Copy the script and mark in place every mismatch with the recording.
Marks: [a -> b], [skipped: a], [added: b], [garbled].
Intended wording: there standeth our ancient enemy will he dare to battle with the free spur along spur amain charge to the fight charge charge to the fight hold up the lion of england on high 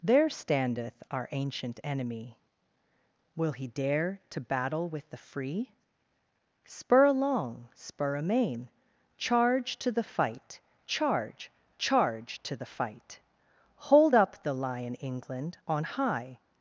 there standeth our ancient enemy will he dare to battle with the free spur along spur amain charge to the fight charge charge to the fight hold up the lion [skipped: of] england on high